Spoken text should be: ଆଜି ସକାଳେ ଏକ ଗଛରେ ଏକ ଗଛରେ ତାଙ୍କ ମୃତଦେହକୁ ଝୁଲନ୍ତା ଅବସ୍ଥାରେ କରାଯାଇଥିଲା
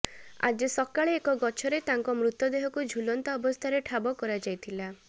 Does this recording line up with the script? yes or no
no